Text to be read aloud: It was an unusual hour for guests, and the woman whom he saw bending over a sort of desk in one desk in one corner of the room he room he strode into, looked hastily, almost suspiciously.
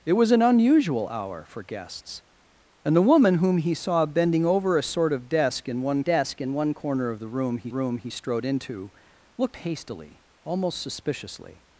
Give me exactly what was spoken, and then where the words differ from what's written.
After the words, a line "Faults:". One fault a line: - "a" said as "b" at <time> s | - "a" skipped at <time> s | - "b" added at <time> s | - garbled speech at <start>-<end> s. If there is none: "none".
It was an unusual hour for guests, and the woman whom he saw bending over a sort of desk in one desk in one corner of the room he room he strode into, looked hastily, almost suspiciously.
Faults:
none